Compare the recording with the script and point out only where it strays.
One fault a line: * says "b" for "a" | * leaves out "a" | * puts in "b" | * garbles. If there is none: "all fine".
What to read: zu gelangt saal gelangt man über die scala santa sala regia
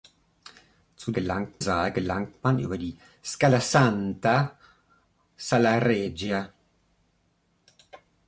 all fine